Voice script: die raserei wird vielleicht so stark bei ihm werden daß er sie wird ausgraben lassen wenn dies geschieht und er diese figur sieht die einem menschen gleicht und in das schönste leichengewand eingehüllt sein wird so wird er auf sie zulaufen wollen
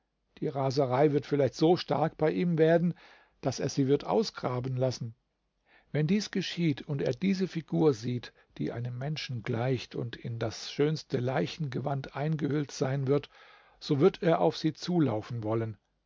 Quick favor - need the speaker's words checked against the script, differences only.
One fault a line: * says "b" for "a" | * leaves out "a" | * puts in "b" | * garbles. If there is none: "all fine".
all fine